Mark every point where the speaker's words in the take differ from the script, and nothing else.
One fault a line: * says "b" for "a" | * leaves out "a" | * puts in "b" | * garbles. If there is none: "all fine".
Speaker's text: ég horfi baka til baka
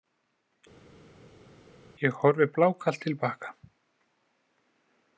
* says "blákalt" for "baka"